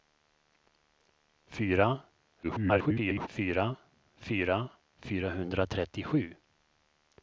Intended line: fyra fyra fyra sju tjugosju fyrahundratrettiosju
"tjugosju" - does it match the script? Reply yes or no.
no